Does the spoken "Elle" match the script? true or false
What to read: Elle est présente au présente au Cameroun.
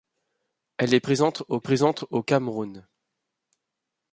true